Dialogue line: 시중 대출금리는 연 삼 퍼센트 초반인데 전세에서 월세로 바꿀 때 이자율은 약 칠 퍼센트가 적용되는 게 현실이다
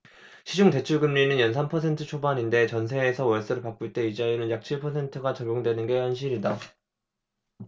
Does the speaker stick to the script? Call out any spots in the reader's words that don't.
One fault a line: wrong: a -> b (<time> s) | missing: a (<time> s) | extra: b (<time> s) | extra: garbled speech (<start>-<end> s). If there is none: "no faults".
no faults